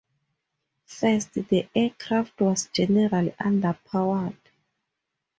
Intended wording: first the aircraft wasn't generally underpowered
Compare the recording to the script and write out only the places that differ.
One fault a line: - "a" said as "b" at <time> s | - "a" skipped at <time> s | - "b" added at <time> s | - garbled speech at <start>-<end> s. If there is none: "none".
- "wasn't" said as "was" at 2.4 s